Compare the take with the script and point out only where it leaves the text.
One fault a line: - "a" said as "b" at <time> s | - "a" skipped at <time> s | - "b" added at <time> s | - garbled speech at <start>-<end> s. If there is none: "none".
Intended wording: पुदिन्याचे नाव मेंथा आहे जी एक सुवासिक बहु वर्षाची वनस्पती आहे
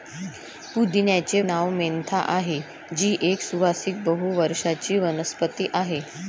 none